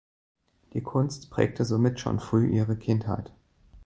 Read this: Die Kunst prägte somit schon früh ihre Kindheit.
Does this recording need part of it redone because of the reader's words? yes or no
no